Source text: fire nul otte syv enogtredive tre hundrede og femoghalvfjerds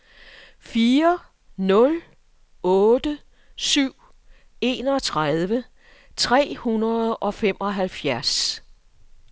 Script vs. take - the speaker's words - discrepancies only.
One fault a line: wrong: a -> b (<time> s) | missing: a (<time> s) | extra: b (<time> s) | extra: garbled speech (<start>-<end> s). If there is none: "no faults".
no faults